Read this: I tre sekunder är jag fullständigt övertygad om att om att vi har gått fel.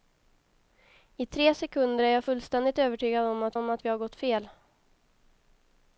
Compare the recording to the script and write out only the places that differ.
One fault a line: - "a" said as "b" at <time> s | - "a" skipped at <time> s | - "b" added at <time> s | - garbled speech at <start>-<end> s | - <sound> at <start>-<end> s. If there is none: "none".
none